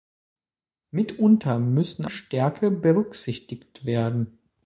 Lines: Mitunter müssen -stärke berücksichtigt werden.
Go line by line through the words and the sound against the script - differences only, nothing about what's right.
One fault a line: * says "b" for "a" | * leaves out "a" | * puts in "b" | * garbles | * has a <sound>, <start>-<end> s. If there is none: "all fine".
all fine